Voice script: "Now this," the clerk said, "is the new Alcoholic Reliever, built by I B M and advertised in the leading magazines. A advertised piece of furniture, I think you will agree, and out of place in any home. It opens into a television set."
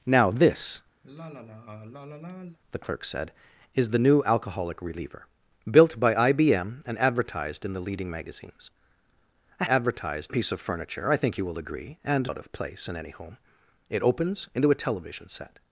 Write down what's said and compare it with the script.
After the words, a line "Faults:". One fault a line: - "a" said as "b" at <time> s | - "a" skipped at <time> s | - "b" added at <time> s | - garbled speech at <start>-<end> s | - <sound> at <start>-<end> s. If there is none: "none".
"Now this," the clerk said, "is the new Alcoholic Reliever, built by I B M and advertised in the leading magazines. A advertised piece of furniture, I think you will agree, and out of place in any home. It opens into a television set."
Faults:
- sigh at 1.0-2.6 s